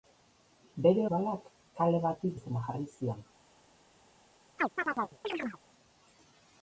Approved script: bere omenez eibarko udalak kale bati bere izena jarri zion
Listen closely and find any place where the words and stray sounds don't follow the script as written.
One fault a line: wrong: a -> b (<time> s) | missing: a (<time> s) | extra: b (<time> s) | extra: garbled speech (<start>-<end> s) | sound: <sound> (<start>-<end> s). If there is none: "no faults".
missing: omenez eibarko (1.0 s)
missing: bere (2.3 s)
sound: chirp (4.6-5.6 s)